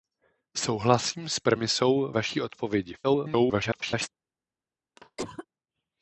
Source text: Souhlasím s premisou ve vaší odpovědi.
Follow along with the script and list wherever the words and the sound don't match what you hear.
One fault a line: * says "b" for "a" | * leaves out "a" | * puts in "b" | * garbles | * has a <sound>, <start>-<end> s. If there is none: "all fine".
* leaves out "ve"
* garbles
* has a cough, 5.0-5.5 s